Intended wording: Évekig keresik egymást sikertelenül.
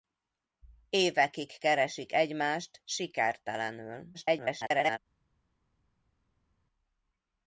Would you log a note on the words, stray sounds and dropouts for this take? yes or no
yes